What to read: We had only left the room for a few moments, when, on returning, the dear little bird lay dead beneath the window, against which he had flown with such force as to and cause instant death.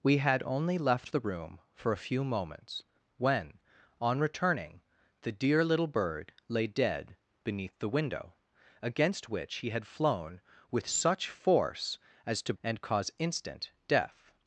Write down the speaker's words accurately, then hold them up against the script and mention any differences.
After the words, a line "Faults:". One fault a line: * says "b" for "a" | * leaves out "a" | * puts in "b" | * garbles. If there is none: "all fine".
We had only left the room for a few moments, when, on returning, the dear little bird lay dead beneath the window, against which he had flown with such force as to and cause instant death.
Faults:
all fine